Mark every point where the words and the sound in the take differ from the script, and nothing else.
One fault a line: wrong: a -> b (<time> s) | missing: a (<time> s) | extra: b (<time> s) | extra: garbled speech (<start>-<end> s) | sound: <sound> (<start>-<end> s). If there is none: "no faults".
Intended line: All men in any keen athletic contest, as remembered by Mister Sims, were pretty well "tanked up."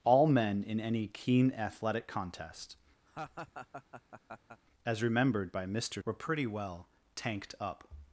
sound: laugh (3.1-4.6 s)
missing: Sims (6.0 s)